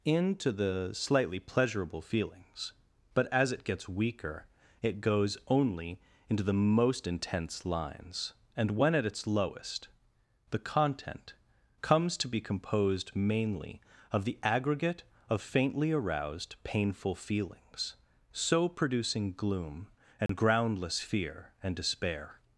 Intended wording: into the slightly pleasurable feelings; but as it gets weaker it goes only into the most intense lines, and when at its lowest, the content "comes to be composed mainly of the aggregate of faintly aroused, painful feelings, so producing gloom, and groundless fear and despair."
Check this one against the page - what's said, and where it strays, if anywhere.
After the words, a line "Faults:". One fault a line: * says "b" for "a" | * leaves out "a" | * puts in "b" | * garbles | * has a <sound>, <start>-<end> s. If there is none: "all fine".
into the slightly pleasurable feelings; but as it gets weaker it goes only into the most intense lines, and when at its lowest, the content "comes to be composed mainly of the aggregate of faintly aroused, painful feelings, so producing gloom, and groundless fear and despair."
Faults:
* has a dropout, 20.3-20.3 s